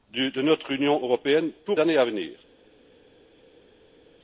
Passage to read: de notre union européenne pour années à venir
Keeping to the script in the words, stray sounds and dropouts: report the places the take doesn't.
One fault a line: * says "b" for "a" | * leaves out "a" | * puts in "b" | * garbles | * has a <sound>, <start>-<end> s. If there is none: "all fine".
all fine